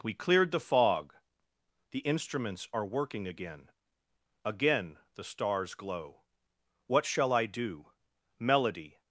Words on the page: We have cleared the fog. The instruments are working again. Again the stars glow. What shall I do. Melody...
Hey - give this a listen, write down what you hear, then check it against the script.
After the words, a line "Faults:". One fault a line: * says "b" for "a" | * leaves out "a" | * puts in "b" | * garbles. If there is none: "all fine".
We cleared the fog. The instruments are working again. Again the stars glow. What shall I do. Melody...
Faults:
* leaves out "have"